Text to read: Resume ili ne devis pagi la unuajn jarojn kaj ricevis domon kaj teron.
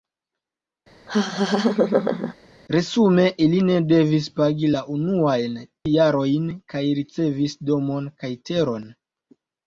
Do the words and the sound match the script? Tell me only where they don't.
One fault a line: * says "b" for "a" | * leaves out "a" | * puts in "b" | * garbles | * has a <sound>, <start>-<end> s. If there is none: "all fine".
* has a laugh, 1.1-2.3 s